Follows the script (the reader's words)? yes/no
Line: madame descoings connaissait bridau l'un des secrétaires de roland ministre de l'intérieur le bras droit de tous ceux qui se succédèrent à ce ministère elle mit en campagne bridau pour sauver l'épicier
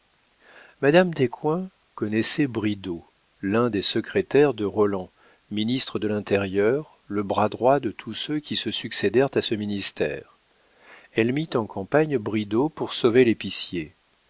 yes